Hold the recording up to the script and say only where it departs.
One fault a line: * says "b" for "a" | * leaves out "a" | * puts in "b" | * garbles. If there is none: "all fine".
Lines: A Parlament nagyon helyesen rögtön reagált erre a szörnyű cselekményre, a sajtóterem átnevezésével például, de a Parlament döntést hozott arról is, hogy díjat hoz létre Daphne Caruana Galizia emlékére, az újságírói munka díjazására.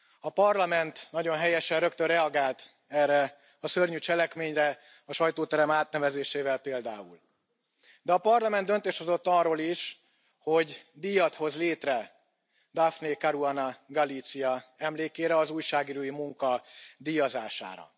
all fine